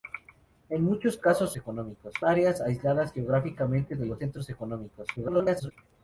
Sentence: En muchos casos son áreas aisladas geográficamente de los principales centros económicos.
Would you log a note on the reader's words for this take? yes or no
yes